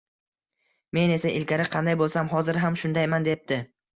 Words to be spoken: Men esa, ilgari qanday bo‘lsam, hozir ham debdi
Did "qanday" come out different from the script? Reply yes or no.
no